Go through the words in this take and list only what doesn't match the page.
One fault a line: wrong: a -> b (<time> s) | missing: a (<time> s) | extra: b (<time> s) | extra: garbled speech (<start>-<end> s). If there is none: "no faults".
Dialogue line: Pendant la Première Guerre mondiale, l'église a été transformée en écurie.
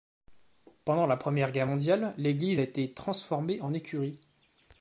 no faults